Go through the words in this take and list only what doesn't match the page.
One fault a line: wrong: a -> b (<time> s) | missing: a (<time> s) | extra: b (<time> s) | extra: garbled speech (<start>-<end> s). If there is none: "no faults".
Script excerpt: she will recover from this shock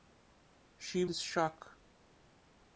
missing: will recover from (1.1 s)